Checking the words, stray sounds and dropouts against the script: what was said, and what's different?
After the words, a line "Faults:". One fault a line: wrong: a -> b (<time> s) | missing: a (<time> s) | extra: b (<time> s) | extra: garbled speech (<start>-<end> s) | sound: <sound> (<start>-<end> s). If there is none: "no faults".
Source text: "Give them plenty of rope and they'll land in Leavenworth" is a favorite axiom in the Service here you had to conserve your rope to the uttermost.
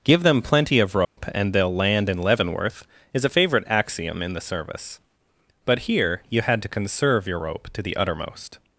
"Give them plenty of rope and they'll land in Leavenworth" is a favorite axiom in the Service but here you had to conserve your rope to the uttermost.
Faults:
sound: dropout (1.0-1.2 s)
extra: but (5.6 s)